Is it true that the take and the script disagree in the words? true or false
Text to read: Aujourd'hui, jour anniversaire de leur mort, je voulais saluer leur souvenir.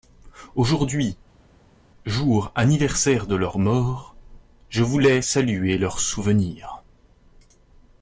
false